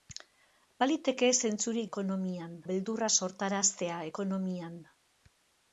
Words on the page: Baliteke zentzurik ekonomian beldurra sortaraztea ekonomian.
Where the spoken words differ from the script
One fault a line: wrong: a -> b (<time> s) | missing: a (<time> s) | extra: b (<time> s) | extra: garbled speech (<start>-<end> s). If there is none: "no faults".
no faults